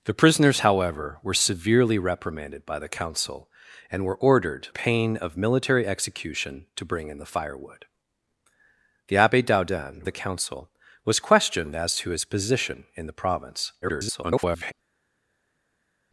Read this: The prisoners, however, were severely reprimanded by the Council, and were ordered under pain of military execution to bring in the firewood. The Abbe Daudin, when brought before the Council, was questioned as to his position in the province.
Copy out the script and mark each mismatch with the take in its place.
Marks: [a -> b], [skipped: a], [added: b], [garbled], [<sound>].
The prisoners, however, were severely reprimanded by the Council, and were ordered [skipped: under] pain of military execution to bring in the firewood. The Abbe Daudin, [skipped: when brought before] the Council, was questioned as to his position in the province. [garbled]